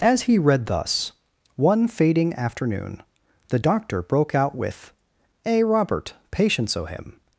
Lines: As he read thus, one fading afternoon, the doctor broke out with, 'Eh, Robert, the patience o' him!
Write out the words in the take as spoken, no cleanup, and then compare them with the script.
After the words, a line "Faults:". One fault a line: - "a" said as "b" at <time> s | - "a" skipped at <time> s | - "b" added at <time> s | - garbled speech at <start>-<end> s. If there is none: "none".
As he read thus, one fading afternoon, the doctor broke out with, 'Eh, Robert, patience o' him!
Faults:
- "the" skipped at 6.1 s